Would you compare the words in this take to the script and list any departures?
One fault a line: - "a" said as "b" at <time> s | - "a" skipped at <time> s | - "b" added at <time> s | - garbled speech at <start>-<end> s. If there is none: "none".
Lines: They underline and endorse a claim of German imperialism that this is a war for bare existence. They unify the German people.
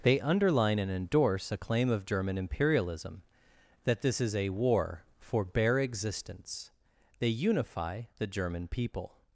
none